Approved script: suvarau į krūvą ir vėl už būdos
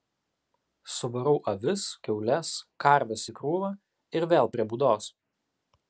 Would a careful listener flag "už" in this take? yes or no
yes